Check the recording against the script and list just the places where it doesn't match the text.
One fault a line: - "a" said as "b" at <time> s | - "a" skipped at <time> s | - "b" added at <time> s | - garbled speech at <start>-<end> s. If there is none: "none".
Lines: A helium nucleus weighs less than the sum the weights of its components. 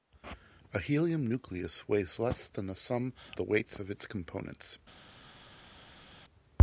none